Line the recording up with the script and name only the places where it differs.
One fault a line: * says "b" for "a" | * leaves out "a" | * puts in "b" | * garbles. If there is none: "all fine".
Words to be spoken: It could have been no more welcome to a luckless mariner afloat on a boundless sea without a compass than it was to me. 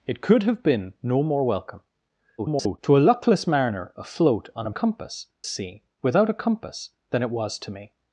* garbles
* says "compass" for "boundless"